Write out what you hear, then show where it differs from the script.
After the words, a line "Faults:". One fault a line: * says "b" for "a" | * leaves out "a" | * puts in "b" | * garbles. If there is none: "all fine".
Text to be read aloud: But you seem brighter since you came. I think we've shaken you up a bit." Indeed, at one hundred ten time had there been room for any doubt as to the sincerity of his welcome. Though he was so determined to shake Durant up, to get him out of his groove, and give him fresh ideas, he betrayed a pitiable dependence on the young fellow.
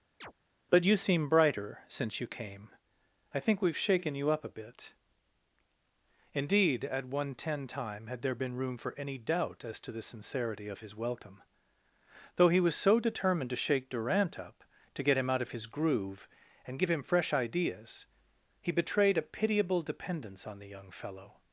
But you seem brighter since you came. I think we've shaken you up a bit." Indeed, at one ten time had there been room for any doubt as to the sincerity of his welcome. Though he was so determined to shake Durant up, to get him out of his groove, and give him fresh ideas, he betrayed a pitiable dependence on the young fellow.
Faults:
* leaves out "hundred"